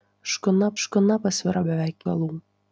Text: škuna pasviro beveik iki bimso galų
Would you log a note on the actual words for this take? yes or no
yes